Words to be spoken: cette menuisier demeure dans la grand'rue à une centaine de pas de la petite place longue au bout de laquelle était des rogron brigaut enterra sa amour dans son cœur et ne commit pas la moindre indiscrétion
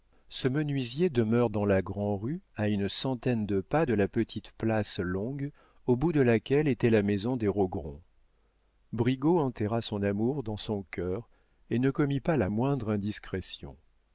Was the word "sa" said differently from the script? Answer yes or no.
yes